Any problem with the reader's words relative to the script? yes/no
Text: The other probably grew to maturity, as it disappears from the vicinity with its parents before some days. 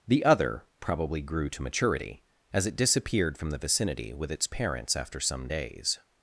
yes